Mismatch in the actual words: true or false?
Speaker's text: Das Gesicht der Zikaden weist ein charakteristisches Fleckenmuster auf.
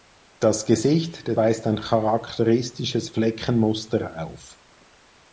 true